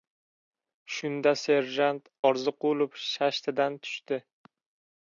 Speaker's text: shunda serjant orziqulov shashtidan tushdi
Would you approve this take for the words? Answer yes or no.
yes